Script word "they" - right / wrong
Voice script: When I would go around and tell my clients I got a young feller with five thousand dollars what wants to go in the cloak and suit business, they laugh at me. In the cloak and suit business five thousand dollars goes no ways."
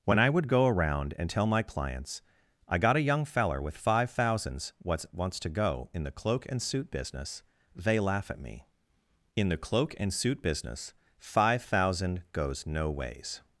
right